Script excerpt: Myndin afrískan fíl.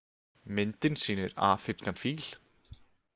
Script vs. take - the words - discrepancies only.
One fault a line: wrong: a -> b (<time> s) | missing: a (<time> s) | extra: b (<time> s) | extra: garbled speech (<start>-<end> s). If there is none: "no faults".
extra: sýnir (1.0 s)